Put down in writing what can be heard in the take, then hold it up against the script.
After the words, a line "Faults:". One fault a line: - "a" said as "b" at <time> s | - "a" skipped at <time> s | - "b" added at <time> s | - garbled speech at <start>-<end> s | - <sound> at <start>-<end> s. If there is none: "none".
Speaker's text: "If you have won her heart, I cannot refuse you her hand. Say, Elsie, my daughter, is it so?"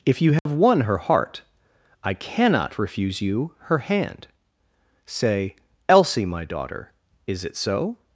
"If you have won her heart, I cannot refuse you her hand. Say, Elsie, my daughter, is it so?"
Faults:
- dropout at 0.4-0.5 s